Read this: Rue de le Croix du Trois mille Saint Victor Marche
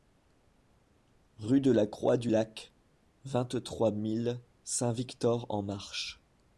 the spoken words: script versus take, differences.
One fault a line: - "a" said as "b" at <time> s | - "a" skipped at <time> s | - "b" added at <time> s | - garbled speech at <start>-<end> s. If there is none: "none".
- "le" said as "la" at 1.7 s
- "Lac vingt" added at 2.3 s
- "en" added at 5.5 s